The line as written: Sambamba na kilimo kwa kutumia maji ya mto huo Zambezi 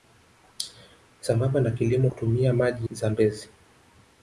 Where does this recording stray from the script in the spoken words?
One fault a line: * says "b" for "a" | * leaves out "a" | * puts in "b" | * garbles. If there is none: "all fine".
* leaves out "kwa"
* leaves out "ya mto huo"